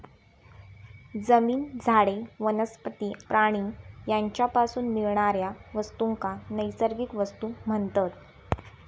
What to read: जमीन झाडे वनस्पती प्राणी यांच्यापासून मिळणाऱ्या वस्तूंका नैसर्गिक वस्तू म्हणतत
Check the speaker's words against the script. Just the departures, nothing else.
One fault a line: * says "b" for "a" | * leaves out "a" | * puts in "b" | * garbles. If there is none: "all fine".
all fine